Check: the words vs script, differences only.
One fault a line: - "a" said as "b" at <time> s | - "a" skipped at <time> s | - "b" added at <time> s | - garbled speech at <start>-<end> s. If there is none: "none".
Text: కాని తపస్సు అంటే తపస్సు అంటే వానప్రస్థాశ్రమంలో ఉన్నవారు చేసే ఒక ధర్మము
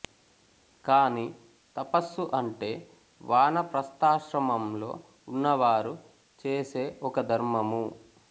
- "తపస్సు అంటే" skipped at 2.7 s